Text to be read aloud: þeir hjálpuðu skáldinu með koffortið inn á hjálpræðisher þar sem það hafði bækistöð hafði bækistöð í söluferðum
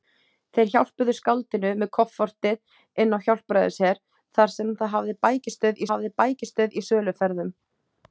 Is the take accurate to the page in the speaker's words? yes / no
yes